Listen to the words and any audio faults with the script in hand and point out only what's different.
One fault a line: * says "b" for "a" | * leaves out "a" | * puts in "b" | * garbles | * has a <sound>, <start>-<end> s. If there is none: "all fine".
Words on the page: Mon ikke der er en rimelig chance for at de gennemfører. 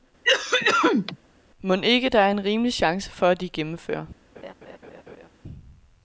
* has a cough, 0.2-1.2 s
* has a laugh, 4.4-5.3 s